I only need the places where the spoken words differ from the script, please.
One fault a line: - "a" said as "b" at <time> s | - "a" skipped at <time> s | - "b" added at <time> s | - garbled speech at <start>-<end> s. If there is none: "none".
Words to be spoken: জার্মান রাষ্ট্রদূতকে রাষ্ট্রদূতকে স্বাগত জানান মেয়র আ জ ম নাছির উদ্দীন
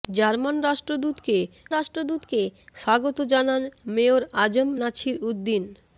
none